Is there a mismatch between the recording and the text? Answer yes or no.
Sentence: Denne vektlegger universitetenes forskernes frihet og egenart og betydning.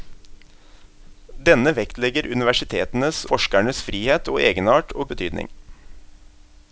no